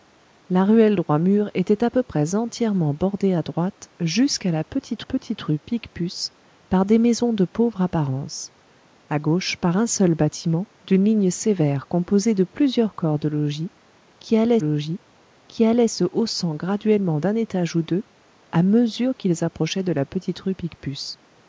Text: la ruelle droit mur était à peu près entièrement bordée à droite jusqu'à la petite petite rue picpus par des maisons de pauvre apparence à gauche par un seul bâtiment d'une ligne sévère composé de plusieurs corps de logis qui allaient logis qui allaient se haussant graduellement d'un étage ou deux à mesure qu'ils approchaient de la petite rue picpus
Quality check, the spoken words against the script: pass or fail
pass